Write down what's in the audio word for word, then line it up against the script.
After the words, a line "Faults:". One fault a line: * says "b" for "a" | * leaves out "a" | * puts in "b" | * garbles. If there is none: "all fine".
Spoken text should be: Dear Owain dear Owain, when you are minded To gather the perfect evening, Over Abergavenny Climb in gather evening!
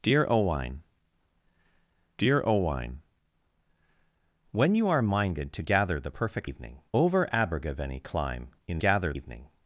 Dear Owain dear Owain, when you are minded To gather the perfect evening, Over Abergavenny Climb in gather evening!
Faults:
all fine